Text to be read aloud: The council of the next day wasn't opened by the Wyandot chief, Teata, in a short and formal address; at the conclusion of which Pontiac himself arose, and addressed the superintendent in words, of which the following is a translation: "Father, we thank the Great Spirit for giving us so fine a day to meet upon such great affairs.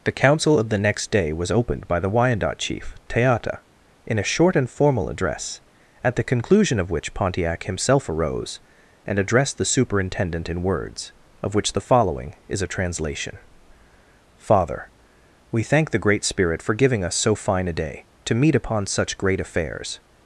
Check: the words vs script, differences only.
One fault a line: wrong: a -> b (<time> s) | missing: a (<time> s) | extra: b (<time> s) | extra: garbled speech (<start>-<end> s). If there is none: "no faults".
wrong: wasn't -> was (1.3 s)